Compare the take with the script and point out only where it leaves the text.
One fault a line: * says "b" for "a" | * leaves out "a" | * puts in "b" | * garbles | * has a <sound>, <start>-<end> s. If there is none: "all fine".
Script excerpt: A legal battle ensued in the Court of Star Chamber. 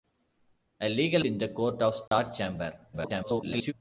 * leaves out "battle ensued"
* has a dropout, 2.1-2.1 s
* garbles